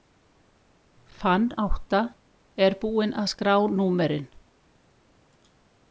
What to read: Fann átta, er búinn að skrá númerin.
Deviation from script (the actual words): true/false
false